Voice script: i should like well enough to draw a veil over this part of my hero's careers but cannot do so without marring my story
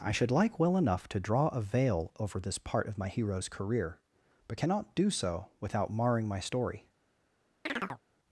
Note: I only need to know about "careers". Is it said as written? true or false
false